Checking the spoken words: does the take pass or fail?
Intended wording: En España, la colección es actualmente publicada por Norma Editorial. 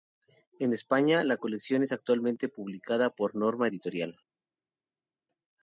pass